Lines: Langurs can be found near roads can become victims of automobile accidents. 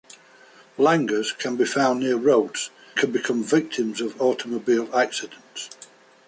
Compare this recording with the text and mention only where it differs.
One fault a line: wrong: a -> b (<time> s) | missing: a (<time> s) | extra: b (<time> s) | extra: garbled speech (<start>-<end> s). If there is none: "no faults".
no faults